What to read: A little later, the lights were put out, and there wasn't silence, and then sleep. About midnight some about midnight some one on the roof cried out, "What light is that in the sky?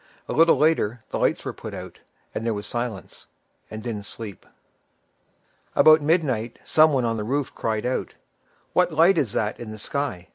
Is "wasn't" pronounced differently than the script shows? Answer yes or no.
yes